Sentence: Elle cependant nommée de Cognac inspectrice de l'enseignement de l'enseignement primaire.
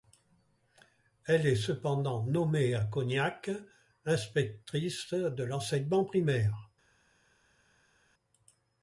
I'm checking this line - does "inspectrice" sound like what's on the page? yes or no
yes